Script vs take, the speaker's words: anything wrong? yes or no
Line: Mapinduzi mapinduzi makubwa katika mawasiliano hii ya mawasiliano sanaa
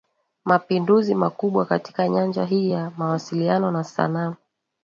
yes